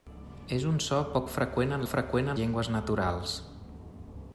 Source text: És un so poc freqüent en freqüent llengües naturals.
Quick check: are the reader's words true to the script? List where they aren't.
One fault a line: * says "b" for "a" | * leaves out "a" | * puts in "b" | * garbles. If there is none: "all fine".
all fine